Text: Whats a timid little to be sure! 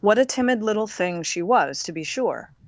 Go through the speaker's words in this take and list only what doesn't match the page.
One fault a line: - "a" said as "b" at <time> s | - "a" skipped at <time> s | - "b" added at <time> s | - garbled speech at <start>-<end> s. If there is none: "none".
- "Whats" said as "What" at 0.0 s
- "thing she was" added at 0.9 s